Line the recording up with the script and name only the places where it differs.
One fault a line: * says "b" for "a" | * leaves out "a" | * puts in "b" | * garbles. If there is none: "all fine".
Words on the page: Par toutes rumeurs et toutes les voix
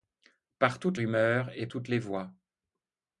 all fine